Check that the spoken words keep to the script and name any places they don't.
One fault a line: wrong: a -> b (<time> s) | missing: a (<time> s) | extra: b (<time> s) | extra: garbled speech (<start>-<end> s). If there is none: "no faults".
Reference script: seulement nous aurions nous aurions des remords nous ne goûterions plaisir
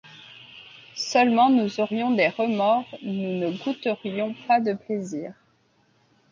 missing: nous aurions (2.1 s)
extra: pas de (4.5 s)